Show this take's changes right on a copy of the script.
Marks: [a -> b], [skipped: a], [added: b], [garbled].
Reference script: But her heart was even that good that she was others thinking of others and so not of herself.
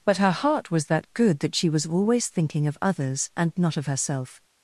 But her heart was [skipped: even] that good that she was [others -> always] thinking of others and [skipped: so] not of herself.